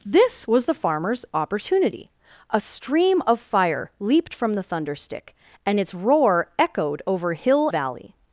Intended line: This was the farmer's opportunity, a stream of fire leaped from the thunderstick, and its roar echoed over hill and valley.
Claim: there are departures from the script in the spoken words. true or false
true